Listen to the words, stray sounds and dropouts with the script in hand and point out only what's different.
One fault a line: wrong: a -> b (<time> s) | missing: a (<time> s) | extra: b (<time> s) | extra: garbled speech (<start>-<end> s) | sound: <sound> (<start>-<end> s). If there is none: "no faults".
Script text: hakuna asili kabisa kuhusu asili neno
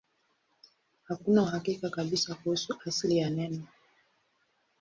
wrong: asili -> uhakika (1.4 s)
extra: ya (3.2 s)